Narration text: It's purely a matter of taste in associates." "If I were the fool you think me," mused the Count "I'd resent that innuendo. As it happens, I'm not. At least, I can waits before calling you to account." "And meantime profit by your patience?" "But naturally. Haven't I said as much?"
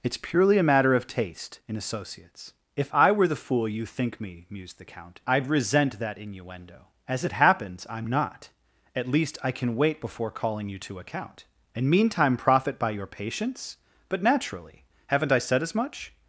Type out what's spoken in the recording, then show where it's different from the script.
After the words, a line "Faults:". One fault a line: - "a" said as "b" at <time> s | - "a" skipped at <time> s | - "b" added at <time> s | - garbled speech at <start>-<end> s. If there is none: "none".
It's purely a matter of taste in associates." "If I were the fool you think me," mused the Count "I'd resent that innuendo. As it happens, I'm not. At least, I can wait before calling you to account." "And meantime profit by your patience?" "But naturally. Haven't I said as much?"
Faults:
- "waits" said as "wait" at 9.8 s